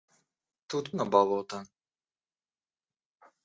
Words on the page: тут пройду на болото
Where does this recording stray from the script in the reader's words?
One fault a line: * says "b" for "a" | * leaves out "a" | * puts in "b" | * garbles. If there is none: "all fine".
* leaves out "пройду"